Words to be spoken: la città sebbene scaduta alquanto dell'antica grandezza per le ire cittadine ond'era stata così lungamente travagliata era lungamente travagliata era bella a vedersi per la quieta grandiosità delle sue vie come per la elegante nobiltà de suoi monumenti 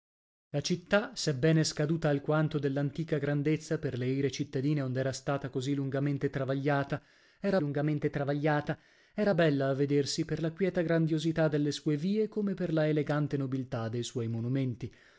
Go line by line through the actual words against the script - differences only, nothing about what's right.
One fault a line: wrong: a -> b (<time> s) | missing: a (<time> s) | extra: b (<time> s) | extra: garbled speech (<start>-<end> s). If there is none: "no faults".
no faults